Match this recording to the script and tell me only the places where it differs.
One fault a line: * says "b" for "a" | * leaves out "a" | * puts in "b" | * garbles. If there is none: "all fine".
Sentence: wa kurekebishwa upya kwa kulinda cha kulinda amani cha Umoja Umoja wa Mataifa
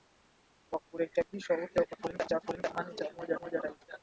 all fine